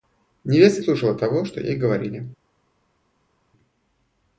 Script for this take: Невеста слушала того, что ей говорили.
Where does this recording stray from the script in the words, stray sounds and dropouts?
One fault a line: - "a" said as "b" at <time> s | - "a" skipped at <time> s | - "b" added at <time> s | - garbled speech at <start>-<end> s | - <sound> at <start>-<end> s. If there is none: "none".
none